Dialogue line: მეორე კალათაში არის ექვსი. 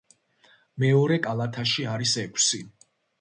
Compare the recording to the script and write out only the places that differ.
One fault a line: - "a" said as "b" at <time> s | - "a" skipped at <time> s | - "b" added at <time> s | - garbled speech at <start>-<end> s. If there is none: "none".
none